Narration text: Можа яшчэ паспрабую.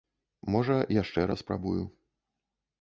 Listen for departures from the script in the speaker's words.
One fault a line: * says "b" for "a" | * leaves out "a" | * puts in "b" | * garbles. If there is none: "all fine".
all fine